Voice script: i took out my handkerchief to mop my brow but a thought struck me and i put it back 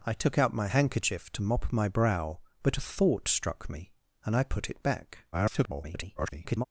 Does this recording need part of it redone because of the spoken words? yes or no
yes